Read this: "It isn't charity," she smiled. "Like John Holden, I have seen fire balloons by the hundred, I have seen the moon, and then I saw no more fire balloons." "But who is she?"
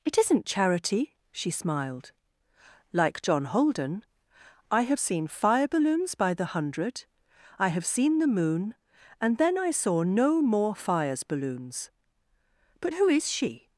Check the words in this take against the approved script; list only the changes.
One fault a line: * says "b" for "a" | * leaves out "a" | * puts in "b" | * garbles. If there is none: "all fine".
* says "fires" for "fire"